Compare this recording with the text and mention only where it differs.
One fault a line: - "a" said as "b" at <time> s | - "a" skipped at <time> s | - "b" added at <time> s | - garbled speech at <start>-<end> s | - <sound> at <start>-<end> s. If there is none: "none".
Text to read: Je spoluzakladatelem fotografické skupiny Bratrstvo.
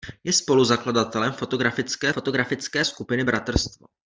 - "fotografické" added at 2.1 s